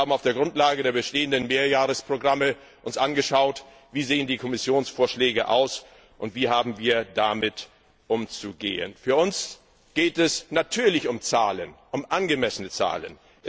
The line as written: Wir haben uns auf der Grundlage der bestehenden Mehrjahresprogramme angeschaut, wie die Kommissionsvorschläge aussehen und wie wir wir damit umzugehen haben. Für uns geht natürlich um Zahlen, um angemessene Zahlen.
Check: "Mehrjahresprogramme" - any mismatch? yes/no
no